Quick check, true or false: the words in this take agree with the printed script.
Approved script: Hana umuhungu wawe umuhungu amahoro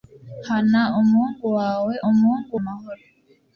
true